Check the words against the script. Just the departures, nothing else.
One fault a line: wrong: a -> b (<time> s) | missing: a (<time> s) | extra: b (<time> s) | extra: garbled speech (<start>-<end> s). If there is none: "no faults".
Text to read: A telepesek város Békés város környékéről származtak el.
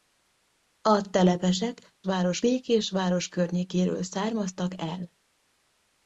no faults